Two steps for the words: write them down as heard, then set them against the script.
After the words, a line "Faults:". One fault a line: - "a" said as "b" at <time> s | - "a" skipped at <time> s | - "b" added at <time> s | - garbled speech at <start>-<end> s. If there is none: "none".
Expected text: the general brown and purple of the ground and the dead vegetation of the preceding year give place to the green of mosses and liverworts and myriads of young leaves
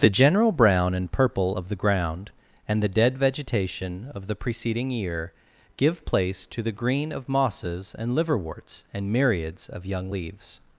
the general brown and purple of the ground and the dead vegetation of the preceding year give place to the green of mosses and liverworts and myriads of young leaves
Faults:
none